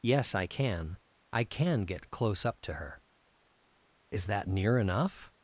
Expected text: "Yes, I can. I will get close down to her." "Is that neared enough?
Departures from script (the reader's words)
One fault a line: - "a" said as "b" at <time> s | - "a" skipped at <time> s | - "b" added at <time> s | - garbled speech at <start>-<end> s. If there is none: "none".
- "will" said as "can" at 1.4 s
- "down" said as "up" at 2.4 s
- "neared" said as "near" at 4.4 s